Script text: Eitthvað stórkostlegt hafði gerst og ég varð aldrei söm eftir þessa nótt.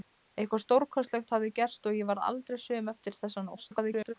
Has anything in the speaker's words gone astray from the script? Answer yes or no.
yes